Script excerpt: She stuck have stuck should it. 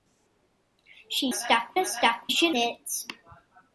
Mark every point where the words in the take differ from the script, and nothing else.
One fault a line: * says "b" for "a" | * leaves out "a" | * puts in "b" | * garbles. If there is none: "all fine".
all fine